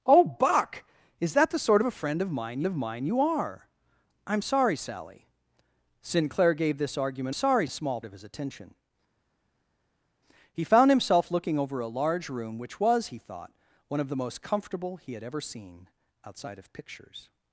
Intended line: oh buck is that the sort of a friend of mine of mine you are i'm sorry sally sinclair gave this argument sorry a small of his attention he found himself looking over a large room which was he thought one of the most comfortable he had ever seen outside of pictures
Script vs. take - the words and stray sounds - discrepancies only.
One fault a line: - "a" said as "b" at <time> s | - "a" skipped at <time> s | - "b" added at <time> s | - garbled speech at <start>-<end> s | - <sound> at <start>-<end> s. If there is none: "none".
none